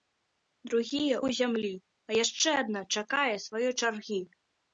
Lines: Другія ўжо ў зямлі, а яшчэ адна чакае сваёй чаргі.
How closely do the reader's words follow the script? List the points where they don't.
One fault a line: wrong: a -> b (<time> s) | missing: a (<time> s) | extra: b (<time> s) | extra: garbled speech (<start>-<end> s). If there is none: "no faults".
missing: ўжо (1.2 s)